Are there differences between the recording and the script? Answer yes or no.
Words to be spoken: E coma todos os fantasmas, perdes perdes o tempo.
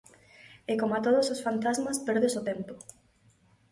yes